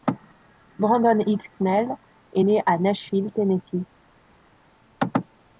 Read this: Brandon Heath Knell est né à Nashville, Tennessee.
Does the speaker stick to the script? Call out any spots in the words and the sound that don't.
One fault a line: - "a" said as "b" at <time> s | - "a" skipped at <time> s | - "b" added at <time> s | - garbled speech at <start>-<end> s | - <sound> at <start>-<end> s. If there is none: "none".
none